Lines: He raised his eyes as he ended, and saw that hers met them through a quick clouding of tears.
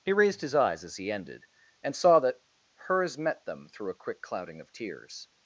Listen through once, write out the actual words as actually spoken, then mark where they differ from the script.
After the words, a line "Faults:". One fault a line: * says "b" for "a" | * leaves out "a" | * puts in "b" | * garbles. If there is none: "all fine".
He raised his eyes as he ended, and saw that hers met them through a quick clouding of tears.
Faults:
all fine